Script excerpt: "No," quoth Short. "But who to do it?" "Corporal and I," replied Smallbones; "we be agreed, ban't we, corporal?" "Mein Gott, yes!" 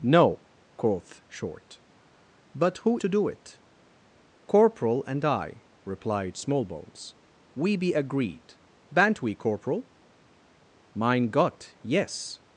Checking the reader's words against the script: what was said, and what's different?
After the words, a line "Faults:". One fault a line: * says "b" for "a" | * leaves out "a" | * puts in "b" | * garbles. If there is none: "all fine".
"No," quoth Short. "But who to do it?" "Corporal and I," replied Smallbones; "we be agreed, ban't we, corporal?" "Mein Gott, yes!"
Faults:
all fine